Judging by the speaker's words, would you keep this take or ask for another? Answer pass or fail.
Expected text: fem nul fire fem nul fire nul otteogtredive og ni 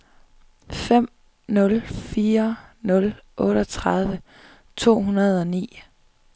fail